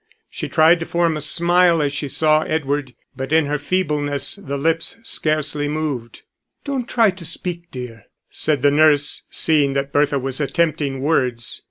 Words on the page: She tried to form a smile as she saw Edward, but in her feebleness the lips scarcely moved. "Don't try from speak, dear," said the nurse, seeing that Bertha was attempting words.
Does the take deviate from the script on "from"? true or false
true